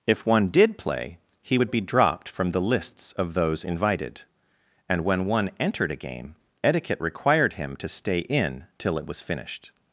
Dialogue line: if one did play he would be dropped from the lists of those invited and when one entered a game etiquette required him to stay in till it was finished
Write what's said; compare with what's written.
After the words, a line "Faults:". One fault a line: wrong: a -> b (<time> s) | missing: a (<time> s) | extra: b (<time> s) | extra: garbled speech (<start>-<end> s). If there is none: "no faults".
if one did play he would be dropped from the lists of those invited and when one entered a game etiquette required him to stay in till it was finished
Faults:
no faults